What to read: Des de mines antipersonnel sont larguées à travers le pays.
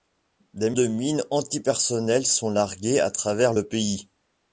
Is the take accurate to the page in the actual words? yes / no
yes